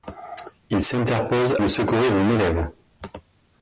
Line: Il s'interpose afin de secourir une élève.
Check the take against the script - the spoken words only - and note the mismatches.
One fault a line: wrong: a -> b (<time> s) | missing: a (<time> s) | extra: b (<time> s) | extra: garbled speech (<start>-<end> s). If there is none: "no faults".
missing: afin (1.6 s)